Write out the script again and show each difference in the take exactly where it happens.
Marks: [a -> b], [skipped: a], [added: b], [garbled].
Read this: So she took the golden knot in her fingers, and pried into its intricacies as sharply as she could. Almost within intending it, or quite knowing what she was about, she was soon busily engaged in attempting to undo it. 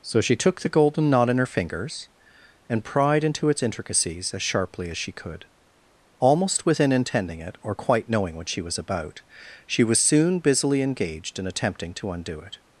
So she took the golden knot in her fingers, and pried into its intricacies as sharply as she could. Almost within intending it, or quite knowing what she was about, she was soon busily engaged in attempting to undo it.